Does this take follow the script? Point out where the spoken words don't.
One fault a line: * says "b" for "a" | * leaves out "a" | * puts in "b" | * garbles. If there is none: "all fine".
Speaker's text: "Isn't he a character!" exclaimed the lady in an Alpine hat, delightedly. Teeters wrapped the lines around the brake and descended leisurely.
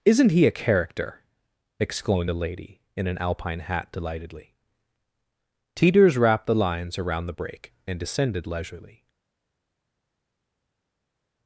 all fine